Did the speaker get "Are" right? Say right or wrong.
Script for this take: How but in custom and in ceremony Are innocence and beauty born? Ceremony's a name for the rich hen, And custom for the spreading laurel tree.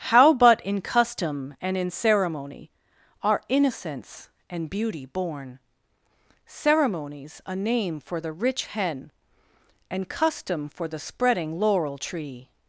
right